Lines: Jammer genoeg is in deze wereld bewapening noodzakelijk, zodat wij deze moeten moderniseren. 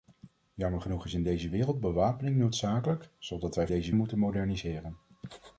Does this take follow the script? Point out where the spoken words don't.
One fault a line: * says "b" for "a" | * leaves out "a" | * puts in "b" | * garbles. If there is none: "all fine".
all fine